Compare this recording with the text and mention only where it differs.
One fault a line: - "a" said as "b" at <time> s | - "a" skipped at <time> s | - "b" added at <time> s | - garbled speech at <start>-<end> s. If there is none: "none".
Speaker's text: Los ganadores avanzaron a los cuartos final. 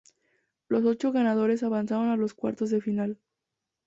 - "ocho" added at 0.8 s
- "de" added at 2.7 s